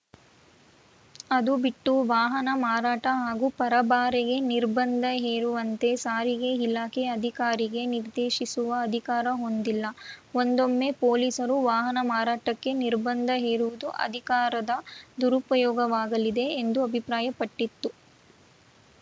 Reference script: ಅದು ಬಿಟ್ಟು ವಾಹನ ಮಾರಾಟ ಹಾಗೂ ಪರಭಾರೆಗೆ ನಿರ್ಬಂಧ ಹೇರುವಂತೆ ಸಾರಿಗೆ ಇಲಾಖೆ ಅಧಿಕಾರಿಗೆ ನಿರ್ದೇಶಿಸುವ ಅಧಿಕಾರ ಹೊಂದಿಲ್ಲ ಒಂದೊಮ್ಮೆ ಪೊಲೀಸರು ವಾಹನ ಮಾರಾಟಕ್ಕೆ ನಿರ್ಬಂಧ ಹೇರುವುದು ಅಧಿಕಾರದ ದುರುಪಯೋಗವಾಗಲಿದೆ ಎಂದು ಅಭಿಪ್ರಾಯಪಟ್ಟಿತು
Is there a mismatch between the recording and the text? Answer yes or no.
no